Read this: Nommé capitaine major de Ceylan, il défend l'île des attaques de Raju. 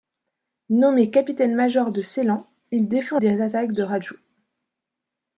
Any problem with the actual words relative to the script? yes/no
yes